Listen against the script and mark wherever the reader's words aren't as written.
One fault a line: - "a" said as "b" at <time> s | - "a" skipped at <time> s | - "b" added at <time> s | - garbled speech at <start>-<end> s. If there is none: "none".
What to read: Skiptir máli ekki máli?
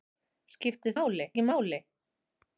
none